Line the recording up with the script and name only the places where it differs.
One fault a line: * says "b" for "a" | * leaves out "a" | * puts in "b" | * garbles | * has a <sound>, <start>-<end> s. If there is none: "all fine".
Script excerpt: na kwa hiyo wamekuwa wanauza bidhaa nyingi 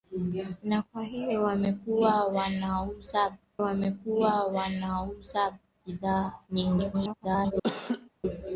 * puts in "wamekuwa wanauza"
* garbles
* has a laugh, 7.6-8.1 s